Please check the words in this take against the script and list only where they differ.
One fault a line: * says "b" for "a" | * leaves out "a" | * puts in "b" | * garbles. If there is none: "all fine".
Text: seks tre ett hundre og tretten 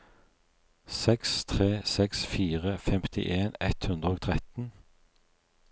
* puts in "seks fire femtien"